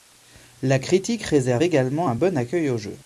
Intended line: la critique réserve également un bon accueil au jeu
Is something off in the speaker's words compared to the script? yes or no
no